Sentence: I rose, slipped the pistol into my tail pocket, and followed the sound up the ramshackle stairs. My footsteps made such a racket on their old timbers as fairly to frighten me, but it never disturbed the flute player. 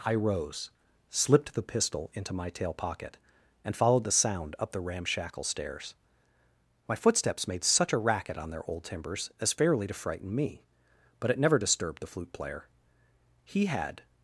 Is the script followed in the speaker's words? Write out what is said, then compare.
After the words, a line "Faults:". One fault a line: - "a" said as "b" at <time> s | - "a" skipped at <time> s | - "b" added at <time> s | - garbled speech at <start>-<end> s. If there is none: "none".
I rose, slipped the pistol into my tail pocket, and followed the sound up the ramshackle stairs. My footsteps made such a racket on their old timbers as fairly to frighten me, but it never disturbed the flute player. He had
Faults:
- "He had" added at 13.4 s